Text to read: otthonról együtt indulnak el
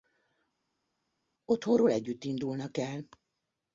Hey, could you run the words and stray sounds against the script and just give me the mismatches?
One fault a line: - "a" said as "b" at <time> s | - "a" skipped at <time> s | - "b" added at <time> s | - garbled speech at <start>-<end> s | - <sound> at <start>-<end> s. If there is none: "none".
none